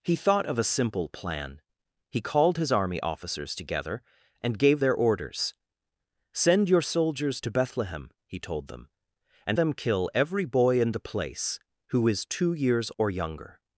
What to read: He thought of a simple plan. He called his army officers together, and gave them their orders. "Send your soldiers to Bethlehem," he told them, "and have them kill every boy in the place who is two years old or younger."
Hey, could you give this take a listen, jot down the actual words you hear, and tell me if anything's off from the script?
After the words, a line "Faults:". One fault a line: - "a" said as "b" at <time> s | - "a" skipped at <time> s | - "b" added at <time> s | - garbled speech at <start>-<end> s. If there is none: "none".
He thought of a simple plan. He called his army officers together, and gave their orders. "Send your soldiers to Bethlehem," he told them, "and them kill every boy in the place who is two years or younger."
Faults:
- "them" skipped at 4.8 s
- "have" skipped at 9.6 s
- "old" skipped at 12.9 s